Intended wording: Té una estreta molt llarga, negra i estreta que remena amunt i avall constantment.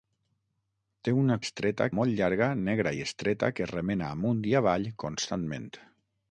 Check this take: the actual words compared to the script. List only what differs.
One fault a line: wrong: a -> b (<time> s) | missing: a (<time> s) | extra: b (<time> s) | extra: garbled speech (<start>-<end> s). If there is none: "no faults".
no faults